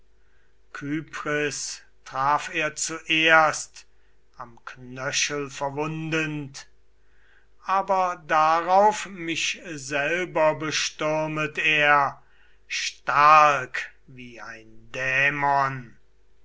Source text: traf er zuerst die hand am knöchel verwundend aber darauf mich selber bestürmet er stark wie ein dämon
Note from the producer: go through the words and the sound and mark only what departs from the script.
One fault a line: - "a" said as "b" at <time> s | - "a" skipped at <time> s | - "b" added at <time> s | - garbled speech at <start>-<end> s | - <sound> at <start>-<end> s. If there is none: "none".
- "die hand" skipped at 3.9 s